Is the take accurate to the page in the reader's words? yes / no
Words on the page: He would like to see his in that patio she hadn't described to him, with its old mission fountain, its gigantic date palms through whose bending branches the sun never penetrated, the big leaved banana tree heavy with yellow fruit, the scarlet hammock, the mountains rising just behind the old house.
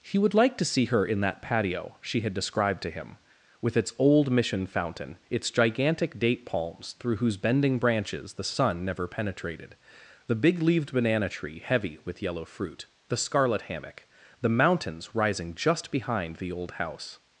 no